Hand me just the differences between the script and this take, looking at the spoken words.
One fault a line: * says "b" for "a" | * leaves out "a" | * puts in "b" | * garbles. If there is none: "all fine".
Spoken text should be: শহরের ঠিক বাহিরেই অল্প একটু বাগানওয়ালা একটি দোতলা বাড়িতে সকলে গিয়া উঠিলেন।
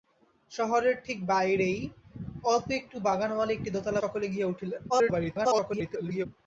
* leaves out "বাড়িতে"
* garbles